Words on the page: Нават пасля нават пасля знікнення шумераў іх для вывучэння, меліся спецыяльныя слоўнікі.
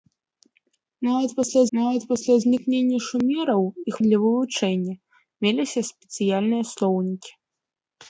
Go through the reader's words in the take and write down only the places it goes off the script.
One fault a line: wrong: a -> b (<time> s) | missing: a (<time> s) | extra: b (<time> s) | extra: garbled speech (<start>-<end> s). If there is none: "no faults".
no faults